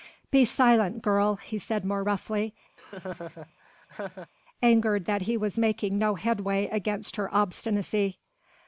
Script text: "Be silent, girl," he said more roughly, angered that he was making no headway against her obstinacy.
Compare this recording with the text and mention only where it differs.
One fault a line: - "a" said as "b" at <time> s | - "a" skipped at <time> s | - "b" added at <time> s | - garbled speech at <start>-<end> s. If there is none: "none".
none